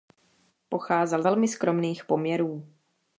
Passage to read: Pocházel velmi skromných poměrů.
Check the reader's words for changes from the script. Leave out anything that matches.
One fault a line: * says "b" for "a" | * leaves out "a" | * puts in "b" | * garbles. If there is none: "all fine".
all fine